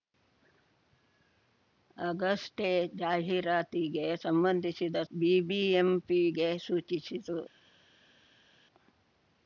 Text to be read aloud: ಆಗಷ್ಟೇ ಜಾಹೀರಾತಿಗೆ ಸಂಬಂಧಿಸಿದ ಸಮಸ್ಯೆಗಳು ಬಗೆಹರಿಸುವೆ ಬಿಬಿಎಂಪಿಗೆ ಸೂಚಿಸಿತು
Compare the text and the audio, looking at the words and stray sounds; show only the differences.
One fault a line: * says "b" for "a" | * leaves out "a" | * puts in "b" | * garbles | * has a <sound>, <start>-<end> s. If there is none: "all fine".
* leaves out "ಸಮಸ್ಯೆಗಳು ಬಗೆಹರಿಸುವೆ"